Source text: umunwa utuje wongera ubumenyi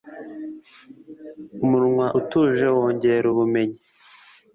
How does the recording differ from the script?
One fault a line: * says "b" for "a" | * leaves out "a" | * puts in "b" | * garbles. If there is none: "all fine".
all fine